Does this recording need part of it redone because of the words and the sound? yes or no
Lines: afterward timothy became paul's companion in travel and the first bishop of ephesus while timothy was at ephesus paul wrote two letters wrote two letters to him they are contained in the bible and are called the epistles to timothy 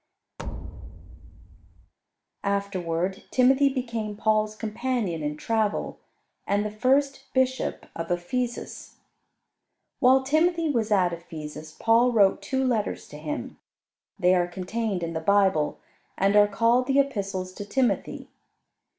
yes